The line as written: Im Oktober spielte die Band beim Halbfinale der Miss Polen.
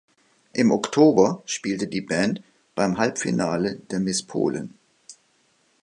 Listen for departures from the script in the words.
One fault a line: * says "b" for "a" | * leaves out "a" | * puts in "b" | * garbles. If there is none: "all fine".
all fine